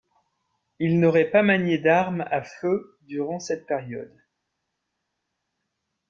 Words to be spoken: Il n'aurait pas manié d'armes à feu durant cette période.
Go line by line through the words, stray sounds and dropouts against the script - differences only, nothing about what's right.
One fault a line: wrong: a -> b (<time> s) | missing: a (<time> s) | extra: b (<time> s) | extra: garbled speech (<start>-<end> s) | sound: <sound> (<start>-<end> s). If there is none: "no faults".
no faults